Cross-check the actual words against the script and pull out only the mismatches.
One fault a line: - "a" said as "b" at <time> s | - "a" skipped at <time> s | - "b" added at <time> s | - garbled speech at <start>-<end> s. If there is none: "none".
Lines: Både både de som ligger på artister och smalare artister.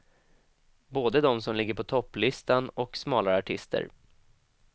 - "både" skipped at 1.2 s
- "artister" said as "topplistan" at 1.8 s